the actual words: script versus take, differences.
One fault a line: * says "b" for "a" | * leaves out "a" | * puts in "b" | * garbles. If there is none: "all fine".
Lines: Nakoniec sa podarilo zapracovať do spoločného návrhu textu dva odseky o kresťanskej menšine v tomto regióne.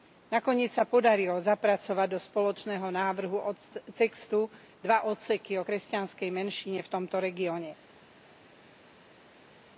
all fine